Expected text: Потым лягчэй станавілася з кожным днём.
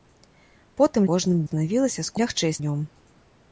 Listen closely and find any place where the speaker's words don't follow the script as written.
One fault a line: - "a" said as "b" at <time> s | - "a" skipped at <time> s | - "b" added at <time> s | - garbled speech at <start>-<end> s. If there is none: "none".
- "лягчэй" said as "кожным" at 1.1 s
- "кожным" said as "лягчэй" at 2.2 s